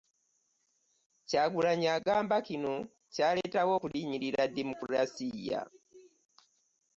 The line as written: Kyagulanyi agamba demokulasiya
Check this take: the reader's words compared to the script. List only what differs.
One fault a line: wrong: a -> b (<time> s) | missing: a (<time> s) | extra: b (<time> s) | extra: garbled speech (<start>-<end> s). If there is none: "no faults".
extra: kino kyaleetawo okulinnyirira (2.5 s)